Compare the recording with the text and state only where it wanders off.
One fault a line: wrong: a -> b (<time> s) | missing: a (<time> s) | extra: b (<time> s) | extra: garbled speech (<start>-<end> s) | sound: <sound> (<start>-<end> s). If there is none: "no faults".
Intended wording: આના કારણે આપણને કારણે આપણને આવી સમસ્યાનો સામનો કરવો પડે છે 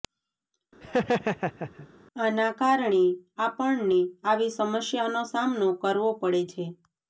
sound: laugh (0.8-1.9 s)
missing: કારણે આપણને (4.0 s)